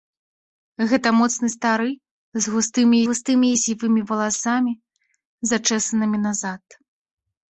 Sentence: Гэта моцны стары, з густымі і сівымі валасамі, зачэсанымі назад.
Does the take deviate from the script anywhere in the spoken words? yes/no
yes